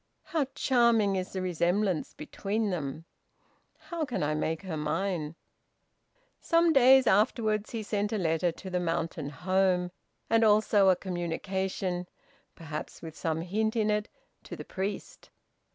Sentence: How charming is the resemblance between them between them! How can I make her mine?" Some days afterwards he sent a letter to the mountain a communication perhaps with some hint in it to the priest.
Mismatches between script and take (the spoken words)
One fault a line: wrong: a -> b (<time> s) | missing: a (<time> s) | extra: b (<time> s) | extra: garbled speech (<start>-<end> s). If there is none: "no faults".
missing: between them (3.0 s)
extra: home and also (9.3 s)